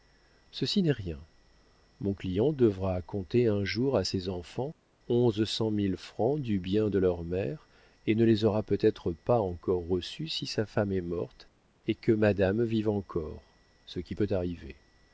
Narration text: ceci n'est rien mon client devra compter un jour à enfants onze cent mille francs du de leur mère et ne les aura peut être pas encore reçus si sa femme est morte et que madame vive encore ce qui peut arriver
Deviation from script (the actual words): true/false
true